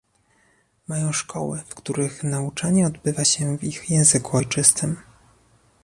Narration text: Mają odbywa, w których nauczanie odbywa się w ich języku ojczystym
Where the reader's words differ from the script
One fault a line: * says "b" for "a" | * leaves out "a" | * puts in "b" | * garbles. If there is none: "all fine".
* says "szkoły" for "odbywa"